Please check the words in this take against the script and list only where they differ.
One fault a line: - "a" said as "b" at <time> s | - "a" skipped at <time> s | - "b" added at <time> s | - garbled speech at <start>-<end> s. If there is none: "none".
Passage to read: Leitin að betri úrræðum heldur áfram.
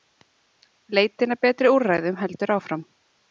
none